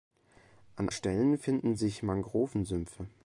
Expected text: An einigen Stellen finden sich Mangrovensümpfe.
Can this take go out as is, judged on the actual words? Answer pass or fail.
fail